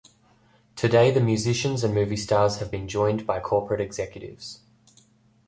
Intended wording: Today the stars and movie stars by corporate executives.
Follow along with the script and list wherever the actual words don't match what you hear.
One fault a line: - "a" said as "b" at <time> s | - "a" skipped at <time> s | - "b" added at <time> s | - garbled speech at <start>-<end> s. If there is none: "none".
- "stars" said as "musicians" at 1.2 s
- "have been joined" added at 2.6 s